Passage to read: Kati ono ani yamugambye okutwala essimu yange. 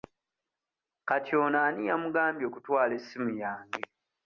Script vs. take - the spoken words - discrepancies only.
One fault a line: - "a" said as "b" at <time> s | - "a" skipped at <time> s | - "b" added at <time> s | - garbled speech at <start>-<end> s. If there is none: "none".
none